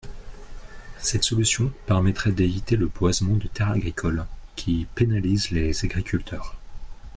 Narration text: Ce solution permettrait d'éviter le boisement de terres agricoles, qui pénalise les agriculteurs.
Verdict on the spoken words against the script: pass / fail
fail